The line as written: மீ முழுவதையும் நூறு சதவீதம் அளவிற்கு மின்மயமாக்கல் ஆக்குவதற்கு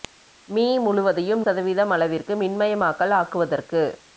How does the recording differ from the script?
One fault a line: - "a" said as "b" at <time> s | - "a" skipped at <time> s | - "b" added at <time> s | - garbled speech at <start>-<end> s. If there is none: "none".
- "நூறு" skipped at 1.4 s